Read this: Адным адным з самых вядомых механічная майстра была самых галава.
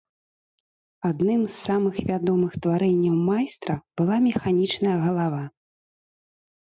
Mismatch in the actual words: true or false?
true